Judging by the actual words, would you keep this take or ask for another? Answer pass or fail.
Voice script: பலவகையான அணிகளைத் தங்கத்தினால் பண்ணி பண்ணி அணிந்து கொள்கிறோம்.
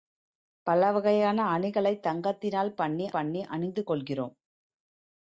pass